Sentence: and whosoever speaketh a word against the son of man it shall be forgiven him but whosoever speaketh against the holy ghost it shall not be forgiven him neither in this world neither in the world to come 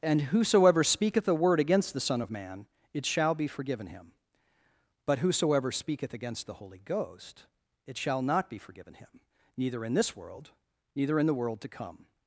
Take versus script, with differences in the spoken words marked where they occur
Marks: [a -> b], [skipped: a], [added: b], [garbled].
and whosoever speaketh a word against the son of man it shall be forgiven him but whosoever speaketh against the holy ghost it shall not be forgiven him neither in this world neither in the world to come